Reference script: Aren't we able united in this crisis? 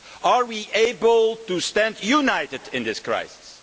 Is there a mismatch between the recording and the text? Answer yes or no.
yes